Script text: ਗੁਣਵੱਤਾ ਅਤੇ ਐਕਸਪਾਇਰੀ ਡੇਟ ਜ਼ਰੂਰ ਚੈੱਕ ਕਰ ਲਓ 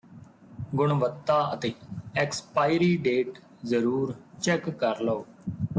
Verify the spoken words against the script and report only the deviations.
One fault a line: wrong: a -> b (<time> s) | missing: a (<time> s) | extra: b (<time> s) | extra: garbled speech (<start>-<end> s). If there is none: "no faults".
no faults